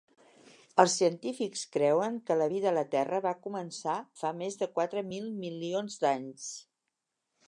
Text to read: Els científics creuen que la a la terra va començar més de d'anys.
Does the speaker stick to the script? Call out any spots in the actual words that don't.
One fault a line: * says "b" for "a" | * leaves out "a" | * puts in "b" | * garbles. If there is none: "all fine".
* puts in "vida"
* puts in "fa"
* puts in "quatre mil milions"